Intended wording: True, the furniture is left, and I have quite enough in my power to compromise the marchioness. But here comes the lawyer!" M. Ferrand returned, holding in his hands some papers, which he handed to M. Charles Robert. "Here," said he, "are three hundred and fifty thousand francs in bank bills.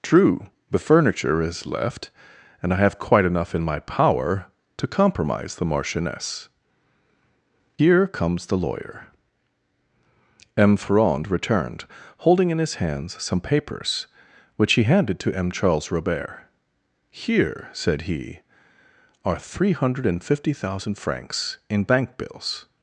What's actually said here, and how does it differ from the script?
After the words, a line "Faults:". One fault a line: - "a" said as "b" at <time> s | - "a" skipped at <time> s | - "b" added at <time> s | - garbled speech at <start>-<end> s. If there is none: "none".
True, the furniture is left, and I have quite enough in my power to compromise the marchioness. Here comes the lawyer!" M. Ferrand returned, holding in his hands some papers, which he handed to M. Charles Robert. "Here," said he, "are three hundred and fifty thousand francs in bank bills.
Faults:
- "But" skipped at 6.5 s